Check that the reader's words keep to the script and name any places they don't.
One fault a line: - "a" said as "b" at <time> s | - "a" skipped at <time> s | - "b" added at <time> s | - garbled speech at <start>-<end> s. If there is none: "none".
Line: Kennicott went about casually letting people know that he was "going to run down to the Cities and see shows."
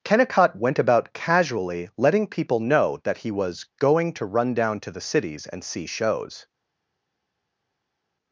none